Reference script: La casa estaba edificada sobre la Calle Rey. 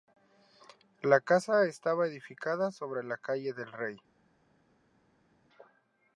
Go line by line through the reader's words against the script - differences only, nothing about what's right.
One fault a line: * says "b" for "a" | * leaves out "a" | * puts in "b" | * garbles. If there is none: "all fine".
* puts in "del"